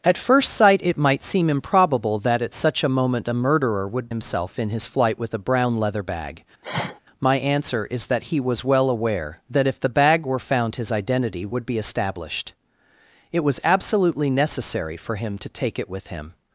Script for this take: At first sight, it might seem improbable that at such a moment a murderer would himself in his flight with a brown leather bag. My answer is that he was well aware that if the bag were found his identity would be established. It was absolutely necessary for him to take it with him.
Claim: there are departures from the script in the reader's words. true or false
false